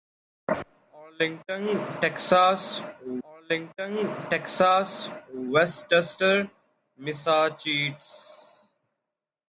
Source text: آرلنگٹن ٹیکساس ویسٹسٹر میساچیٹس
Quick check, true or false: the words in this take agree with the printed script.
false